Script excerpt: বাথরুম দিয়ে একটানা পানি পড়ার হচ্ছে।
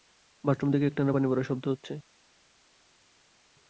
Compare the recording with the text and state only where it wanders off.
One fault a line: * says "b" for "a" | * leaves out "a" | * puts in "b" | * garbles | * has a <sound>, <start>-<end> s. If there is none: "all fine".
* says "থেকে" for "দিয়ে"
* puts in "শব্দ"